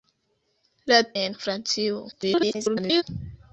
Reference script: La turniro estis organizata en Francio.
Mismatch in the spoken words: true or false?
true